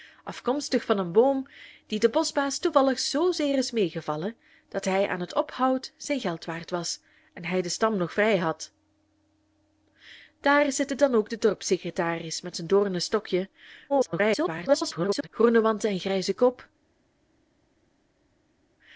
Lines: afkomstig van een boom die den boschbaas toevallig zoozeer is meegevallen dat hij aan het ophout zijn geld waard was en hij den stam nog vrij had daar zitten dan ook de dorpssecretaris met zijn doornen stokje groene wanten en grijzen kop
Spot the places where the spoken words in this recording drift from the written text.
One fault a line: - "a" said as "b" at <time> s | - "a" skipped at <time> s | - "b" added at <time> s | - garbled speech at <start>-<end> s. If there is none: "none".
- garbled speech at 13.9-15.3 s